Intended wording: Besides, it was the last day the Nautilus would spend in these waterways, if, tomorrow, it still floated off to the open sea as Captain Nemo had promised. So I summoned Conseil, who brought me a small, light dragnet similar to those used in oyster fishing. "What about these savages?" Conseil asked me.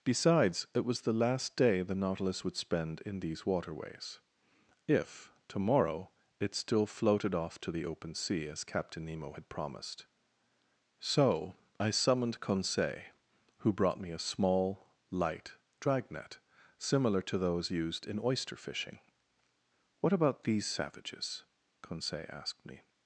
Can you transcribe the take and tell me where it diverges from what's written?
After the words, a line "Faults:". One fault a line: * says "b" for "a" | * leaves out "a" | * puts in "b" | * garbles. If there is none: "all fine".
Besides, it was the last day the Nautilus would spend in these waterways, if, tomorrow, it still floated off to the open sea as Captain Nemo had promised. So I summoned Conseil, who brought me a small, light dragnet similar to those used in oyster fishing. "What about these savages?" Conseil asked me.
Faults:
all fine